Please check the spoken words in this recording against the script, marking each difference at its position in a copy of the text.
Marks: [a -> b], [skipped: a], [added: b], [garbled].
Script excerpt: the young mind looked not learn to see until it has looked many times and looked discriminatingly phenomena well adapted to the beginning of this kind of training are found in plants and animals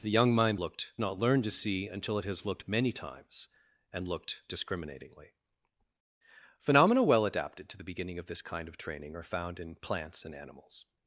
the young mind looked not learn to see until it has looked many times and looked discriminatingly phenomena well adapted to the beginning of this kind of training are found in plants and animals